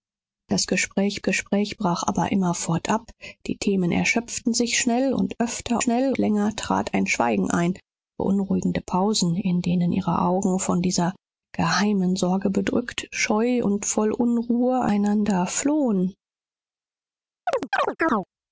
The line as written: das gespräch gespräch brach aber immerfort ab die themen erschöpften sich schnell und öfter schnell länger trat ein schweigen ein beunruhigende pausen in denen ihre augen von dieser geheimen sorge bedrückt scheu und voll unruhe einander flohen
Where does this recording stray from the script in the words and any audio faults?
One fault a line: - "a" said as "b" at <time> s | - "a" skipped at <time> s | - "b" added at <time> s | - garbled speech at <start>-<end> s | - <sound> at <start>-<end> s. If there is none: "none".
- chirp at 17.5-18.3 s